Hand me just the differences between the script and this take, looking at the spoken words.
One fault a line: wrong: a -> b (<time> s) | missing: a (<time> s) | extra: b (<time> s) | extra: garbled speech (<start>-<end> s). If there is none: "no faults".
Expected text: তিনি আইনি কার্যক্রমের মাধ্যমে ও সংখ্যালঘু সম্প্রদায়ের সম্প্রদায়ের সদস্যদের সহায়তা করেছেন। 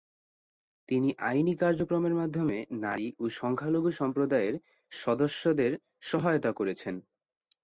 extra: নারী (2.8 s)
missing: সম্প্রদায়ের (4.5 s)